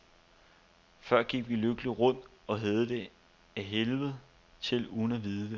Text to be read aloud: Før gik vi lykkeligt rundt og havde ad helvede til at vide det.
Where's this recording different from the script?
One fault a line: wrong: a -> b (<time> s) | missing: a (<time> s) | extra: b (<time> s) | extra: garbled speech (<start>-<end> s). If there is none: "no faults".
extra: det (2.9 s)
extra: uden (4.9 s)